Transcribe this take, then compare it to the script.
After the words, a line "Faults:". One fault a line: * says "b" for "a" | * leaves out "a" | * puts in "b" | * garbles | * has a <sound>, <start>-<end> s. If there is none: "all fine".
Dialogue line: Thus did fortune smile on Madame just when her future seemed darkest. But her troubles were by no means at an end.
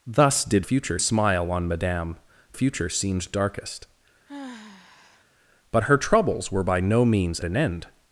Thus did future smile on Madame future seemed darkest. But her troubles were by no means an end.
Faults:
* says "future" for "fortune"
* leaves out "just when her"
* has a sigh, 4.3-5.3 s
* leaves out "at"